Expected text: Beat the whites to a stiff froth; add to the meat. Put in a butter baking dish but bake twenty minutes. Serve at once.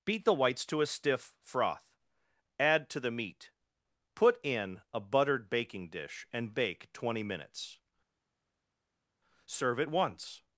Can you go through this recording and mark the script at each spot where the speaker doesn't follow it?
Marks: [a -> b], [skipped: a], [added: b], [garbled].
Beat the whites to a stiff froth; add to the meat. Put in a [butter -> buttered] baking dish [but -> and] bake twenty minutes. Serve at once.